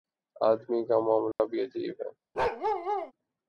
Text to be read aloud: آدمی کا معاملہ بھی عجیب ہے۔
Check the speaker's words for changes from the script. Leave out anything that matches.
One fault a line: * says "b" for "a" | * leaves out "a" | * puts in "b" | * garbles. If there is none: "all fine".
all fine